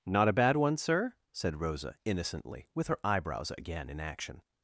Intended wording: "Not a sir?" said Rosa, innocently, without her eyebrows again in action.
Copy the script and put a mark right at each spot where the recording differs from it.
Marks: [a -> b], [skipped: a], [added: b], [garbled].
"Not a [added: bad one] sir?" said Rosa, innocently, [without -> with] her eyebrows again in action.